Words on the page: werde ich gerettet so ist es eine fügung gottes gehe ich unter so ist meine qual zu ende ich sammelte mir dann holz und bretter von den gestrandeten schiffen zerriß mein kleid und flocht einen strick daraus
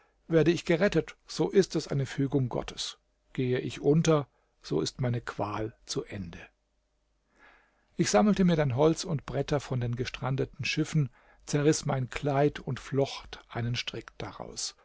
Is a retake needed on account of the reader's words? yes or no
no